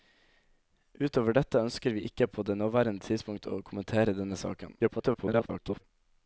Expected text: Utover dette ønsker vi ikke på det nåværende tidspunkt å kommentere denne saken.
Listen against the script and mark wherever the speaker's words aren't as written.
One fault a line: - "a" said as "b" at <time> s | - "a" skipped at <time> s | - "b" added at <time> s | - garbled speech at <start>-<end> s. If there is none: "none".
- garbled speech at 4.8-5.8 s